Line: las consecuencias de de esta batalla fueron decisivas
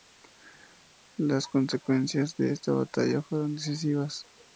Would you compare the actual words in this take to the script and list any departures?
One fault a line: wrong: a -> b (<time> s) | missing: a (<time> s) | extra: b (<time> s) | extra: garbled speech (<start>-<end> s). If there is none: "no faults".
missing: de (2.5 s)